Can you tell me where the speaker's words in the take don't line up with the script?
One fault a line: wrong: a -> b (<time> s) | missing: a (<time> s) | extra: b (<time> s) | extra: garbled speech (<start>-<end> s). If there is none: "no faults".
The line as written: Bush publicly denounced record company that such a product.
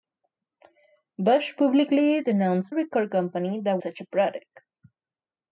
no faults